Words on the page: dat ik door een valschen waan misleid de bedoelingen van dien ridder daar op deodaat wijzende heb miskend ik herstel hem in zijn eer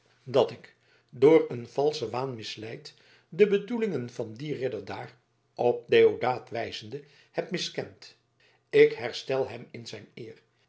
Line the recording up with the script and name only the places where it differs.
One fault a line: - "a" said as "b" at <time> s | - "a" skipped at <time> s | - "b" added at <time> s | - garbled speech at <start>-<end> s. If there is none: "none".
none